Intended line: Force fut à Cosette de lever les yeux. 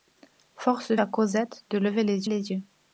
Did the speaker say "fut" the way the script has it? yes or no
no